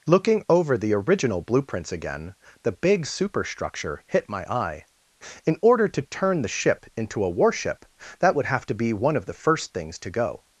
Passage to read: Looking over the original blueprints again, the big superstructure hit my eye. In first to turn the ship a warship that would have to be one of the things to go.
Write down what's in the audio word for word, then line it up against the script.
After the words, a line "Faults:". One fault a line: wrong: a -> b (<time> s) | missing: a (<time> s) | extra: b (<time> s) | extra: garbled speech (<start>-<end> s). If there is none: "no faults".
Looking over the original blueprints again, the big superstructure hit my eye. In order to turn the ship into a warship that would have to be one of the first things to go.
Faults:
wrong: first -> order (5.6 s)
extra: into (7.0 s)
extra: first (9.3 s)